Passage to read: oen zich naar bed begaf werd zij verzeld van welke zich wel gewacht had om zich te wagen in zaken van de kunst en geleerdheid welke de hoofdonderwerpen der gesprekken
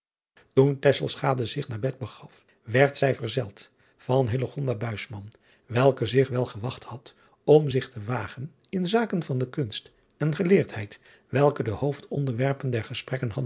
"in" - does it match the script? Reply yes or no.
yes